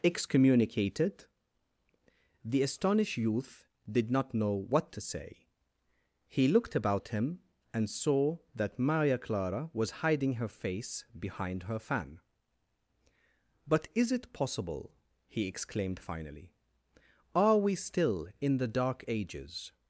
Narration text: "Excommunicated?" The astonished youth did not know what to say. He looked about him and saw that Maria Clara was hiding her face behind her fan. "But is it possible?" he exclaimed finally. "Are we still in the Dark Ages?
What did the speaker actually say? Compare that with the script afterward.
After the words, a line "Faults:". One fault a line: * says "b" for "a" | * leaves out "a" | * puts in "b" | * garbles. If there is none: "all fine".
"Excommunicated?" The astonished youth did not know what to say. He looked about him and saw that Maria Clara was hiding her face behind her fan. "But is it possible?" he exclaimed finally. "Are we still in the Dark Ages?
Faults:
all fine